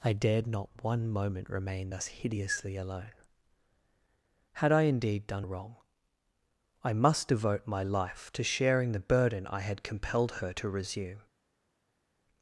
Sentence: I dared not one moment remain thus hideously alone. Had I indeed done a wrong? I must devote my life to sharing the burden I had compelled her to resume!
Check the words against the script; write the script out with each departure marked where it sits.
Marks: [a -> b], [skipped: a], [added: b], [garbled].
I dared not one moment remain thus hideously alone. Had I indeed done a wrong? I must devote my life to sharing the burden I had compelled her to resume!